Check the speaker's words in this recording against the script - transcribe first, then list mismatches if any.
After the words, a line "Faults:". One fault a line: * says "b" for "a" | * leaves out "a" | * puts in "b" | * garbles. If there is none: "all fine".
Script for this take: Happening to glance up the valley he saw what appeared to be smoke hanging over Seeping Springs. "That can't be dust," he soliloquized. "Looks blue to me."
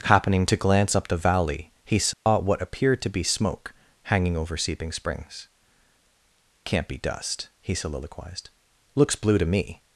Happening to glance up the valley he saw what appeared to be smoke hanging over Seeping Springs. "Can't be dust," he soliloquized. "Looks blue to me."
Faults:
* leaves out "That"